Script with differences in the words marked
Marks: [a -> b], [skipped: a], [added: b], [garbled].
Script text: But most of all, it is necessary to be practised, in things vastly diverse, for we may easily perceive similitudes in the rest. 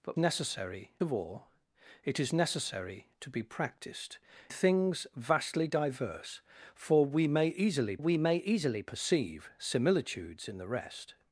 But [most -> necessary] of all, it is necessary to be practised, [skipped: in] things vastly diverse, for we may easily [added: we may easily] perceive similitudes in the rest.